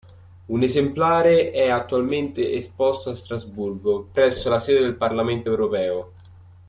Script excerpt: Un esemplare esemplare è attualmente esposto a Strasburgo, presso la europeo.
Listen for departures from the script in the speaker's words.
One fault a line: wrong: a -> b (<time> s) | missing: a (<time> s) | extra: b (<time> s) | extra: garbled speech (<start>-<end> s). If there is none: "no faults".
missing: esemplare (1.5 s)
extra: sede del Parlamento (4.6 s)